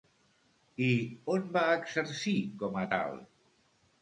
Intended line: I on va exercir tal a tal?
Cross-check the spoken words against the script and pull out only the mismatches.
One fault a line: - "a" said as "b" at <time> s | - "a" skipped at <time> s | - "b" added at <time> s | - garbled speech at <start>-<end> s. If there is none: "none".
- "tal" said as "com" at 2.6 s